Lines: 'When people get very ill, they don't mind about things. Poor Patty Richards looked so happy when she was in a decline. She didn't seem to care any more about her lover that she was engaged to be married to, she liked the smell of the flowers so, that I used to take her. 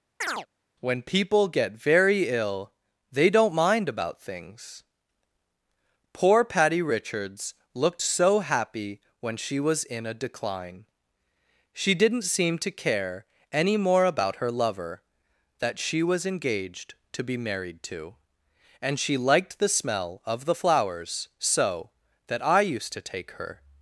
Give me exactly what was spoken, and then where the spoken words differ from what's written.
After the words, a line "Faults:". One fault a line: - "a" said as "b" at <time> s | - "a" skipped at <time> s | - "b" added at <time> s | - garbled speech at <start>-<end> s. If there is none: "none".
'When people get very ill, they don't mind about things. Poor Patty Richards looked so happy when she was in a decline. She didn't seem to care any more about her lover that she was engaged to be married to, and she liked the smell of the flowers so, that I used to take her.
Faults:
- "and" added at 18.8 s